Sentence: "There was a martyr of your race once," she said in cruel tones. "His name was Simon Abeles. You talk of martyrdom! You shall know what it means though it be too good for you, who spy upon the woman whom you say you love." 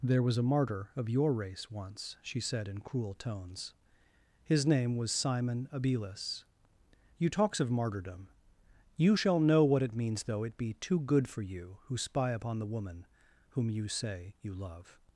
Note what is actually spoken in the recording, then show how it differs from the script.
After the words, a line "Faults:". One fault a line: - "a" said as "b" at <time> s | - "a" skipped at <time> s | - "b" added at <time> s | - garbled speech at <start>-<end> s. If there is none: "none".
"There was a martyr of your race once," she said in cruel tones. "His name was Simon Abeles. You talks of martyrdom! You shall know what it means though it be too good for you, who spy upon the woman whom you say you love."
Faults:
- "talk" said as "talks" at 7.3 s